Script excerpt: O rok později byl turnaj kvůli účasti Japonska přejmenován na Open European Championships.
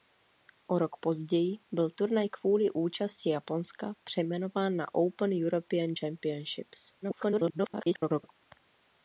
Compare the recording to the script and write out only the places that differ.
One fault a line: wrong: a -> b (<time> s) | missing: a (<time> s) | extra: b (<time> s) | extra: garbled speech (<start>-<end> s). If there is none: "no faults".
extra: garbled speech (7.0-8.3 s)